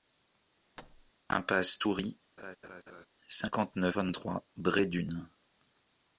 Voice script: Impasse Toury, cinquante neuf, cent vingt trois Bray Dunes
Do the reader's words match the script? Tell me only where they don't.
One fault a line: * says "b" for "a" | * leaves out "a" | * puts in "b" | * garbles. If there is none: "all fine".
* leaves out "cent"